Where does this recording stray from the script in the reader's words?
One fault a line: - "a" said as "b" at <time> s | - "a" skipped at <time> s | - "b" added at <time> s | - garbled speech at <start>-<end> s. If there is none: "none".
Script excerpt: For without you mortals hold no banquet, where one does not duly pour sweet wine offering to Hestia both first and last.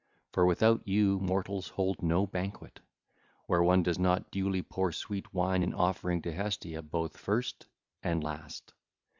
- "in" added at 5.6 s